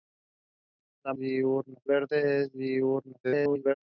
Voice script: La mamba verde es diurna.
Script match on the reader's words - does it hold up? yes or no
no